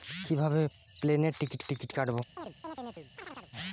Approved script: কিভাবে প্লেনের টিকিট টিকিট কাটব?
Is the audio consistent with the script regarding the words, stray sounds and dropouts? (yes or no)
no